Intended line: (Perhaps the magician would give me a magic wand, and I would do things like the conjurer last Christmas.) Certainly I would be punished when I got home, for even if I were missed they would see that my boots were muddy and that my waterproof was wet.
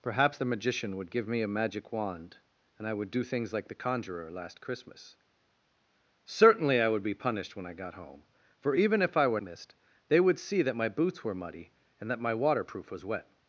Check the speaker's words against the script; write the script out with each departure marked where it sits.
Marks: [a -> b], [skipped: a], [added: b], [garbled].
(Perhaps the magician would give me a magic wand, and I would do things like the conjurer last Christmas.) Certainly I would be punished when I got home, for even if I were missed they would see that my boots were muddy and that my waterproof was wet.